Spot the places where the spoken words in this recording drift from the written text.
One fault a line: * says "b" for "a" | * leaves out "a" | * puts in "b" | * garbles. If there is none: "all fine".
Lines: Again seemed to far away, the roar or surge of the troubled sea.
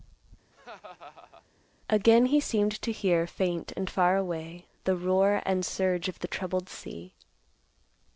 * puts in "he"
* puts in "hear faint and"
* says "and" for "or"